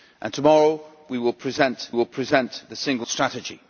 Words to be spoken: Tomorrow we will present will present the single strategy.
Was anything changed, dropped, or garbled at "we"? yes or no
no